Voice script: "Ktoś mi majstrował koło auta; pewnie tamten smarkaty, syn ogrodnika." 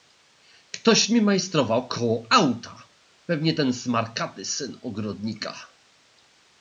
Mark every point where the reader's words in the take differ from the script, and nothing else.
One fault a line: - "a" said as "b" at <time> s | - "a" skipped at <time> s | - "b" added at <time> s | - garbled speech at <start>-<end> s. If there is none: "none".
- "tamten" said as "ten" at 3.5 s